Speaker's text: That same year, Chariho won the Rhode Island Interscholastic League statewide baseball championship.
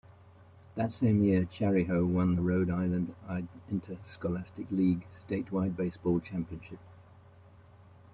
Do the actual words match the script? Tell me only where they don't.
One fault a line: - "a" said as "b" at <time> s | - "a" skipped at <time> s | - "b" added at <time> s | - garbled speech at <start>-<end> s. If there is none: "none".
none